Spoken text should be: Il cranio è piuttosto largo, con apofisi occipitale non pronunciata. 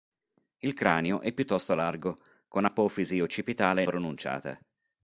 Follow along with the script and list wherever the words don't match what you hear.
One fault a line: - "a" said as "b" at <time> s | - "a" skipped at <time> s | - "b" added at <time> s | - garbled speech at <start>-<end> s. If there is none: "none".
- "non" skipped at 3.8 s